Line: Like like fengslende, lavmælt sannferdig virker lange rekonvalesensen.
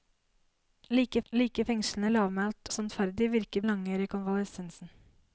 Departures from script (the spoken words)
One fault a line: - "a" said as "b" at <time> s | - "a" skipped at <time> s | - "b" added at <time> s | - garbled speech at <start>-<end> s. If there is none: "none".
none